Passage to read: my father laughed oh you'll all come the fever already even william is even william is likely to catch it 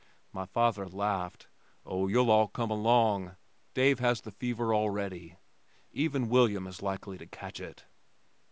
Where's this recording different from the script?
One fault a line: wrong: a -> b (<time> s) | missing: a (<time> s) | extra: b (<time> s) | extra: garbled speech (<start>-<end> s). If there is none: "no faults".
extra: along dave has (2.7 s)
missing: even william is (6.8 s)